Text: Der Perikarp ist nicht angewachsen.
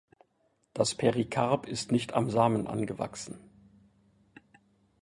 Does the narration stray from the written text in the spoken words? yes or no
yes